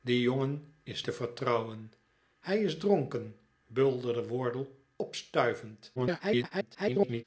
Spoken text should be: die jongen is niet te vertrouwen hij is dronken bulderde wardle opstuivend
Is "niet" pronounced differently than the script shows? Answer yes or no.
yes